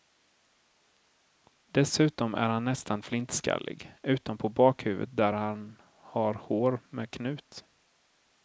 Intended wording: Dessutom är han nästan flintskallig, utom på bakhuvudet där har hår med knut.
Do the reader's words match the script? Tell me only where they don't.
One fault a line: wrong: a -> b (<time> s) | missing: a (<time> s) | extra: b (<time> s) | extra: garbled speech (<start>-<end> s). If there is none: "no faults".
extra: han (5.3 s)